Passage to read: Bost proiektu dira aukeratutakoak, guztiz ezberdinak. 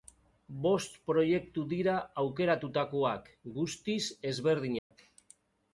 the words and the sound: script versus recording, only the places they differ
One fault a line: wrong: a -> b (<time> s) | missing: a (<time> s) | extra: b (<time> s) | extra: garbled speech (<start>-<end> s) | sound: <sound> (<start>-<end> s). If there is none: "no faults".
sound: dropout (4.8-4.9 s)